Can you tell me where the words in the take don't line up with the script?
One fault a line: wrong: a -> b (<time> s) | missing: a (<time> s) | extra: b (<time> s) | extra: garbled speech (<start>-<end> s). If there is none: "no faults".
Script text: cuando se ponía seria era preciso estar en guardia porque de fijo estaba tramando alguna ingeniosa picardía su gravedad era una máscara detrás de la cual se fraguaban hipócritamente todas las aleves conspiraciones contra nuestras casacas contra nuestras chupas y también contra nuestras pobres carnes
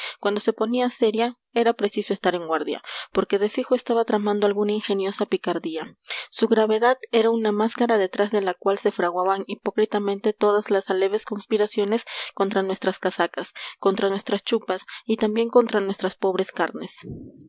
no faults